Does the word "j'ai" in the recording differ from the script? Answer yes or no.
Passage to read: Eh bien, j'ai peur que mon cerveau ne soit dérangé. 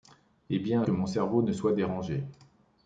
yes